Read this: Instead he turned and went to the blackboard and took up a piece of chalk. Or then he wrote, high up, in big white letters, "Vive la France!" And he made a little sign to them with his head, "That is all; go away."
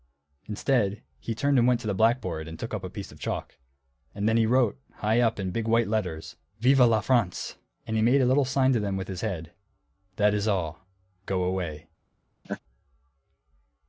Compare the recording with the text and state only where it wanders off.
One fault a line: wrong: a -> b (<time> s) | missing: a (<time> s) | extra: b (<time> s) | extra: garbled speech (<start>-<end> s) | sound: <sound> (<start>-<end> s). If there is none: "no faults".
wrong: Or -> And (4.2 s)
sound: laugh (12.4-12.6 s)